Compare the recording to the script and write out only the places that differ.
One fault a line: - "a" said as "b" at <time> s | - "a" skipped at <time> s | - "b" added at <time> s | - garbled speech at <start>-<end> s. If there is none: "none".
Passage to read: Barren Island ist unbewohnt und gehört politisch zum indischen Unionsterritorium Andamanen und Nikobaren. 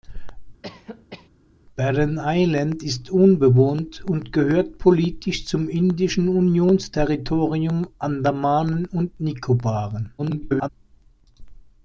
- garbled speech at 10.2-10.7 s